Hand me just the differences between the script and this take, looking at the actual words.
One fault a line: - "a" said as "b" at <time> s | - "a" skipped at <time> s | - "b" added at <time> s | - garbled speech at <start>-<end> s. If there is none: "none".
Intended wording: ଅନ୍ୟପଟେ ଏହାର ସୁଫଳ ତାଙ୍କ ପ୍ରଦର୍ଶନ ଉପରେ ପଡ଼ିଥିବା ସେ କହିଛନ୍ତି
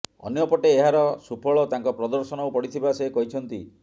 - "ଉପରେ" skipped at 2.5 s